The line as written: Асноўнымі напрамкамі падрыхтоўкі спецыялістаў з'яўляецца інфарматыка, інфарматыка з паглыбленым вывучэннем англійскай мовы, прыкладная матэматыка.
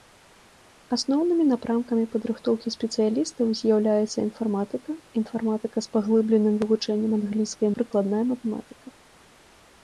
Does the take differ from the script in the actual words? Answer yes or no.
yes